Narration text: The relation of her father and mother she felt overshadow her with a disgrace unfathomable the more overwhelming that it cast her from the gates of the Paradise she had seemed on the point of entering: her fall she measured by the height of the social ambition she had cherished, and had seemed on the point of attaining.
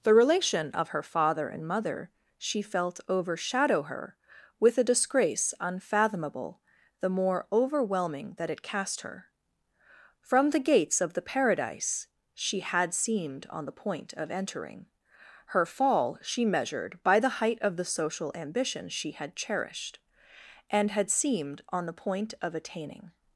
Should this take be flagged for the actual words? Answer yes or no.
no